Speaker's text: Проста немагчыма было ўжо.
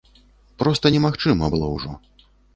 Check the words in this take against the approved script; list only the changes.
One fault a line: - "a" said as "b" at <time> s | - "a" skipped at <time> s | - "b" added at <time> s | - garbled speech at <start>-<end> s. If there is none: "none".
none